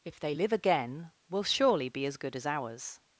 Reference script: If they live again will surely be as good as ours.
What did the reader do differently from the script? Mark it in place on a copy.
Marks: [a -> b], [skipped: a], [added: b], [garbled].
If they live again will surely be as good as ours.